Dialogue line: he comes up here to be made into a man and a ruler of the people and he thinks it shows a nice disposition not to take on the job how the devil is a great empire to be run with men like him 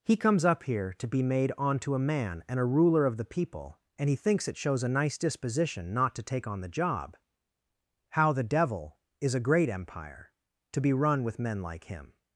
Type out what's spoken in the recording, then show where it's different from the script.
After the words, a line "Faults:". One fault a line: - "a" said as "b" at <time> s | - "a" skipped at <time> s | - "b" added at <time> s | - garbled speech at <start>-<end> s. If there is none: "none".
he comes up here to be made onto a man and a ruler of the people and he thinks it shows a nice disposition not to take on the job how the devil is a great empire to be run with men like him
Faults:
- "into" said as "onto" at 1.6 s